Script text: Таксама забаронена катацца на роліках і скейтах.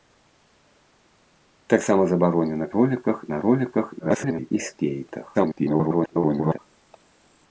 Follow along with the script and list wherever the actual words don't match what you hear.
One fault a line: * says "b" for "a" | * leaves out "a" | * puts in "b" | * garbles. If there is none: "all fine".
* says "роліках" for "катацца"
* garbles
* garbles